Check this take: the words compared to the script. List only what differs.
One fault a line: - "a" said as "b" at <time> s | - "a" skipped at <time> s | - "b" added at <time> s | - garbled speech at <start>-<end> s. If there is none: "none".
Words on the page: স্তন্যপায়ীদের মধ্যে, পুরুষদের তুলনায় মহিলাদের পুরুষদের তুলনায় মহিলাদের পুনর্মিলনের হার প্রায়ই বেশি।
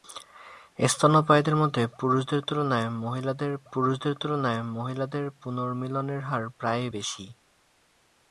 none